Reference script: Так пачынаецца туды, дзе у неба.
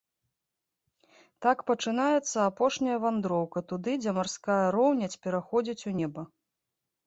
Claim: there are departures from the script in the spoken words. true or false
true